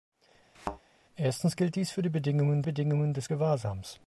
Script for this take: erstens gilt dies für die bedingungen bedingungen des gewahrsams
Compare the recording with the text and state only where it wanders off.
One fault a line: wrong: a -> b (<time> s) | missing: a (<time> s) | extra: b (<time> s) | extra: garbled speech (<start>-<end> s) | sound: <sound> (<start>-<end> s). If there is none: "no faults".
sound: thud (0.5-0.8 s)